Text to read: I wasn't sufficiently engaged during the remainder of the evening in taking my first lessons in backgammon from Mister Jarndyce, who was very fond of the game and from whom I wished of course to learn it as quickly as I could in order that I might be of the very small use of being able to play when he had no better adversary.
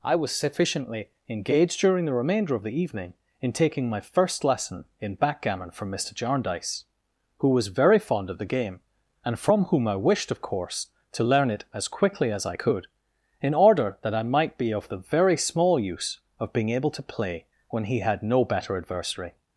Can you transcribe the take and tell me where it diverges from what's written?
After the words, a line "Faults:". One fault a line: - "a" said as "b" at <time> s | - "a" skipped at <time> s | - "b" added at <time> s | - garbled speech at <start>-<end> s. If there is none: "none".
I was sufficiently engaged during the remainder of the evening in taking my first lesson in backgammon from Mister Jarndyce, who was very fond of the game and from whom I wished of course to learn it as quickly as I could in order that I might be of the very small use of being able to play when he had no better adversary.
Faults:
- "wasn't" said as "was" at 0.1 s
- "lessons" said as "lesson" at 4.4 s